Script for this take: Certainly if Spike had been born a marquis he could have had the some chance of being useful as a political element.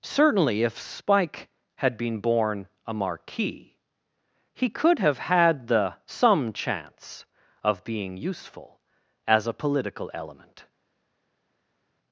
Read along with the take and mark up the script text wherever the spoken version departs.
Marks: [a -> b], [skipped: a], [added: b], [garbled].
Certainly if Spike had been born a marquis he could have had the some chance of being useful as a political element.